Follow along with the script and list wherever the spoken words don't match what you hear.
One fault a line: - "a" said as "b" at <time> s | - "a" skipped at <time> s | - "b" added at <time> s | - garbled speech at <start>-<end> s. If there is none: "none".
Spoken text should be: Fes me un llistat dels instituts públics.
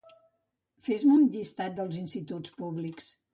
none